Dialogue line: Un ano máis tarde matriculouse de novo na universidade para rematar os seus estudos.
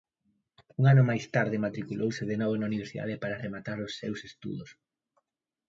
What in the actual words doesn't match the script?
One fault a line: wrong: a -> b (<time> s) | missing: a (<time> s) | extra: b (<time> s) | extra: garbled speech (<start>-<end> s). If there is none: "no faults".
no faults